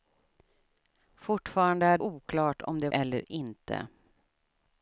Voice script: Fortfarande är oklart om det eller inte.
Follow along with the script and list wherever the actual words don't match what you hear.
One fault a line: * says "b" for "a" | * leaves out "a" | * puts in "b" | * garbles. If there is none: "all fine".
all fine